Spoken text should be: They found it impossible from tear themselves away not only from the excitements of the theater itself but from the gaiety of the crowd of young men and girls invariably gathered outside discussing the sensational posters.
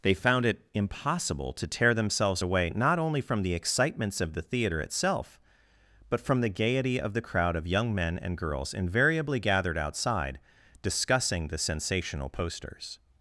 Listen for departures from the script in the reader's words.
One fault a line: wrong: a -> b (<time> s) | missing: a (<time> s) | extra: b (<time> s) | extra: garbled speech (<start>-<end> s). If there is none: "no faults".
wrong: from -> to (1.5 s)